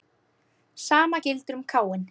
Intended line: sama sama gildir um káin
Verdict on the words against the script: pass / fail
fail